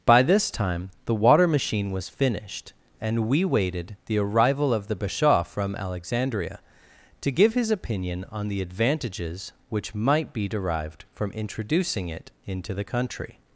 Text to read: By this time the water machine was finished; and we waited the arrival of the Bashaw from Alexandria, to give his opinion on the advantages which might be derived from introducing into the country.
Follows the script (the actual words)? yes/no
no